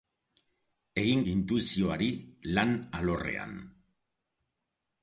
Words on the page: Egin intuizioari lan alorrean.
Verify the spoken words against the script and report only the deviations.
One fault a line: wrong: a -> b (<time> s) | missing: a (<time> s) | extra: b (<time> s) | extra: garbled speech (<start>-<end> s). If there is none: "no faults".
no faults